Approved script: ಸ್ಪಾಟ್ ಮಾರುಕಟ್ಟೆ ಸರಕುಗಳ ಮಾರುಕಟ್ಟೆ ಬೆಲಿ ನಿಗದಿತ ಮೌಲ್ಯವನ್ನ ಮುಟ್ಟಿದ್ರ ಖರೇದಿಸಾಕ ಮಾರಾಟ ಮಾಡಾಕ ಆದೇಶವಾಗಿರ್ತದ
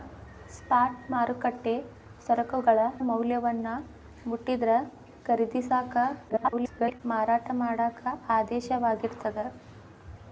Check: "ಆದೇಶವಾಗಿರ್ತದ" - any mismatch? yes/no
no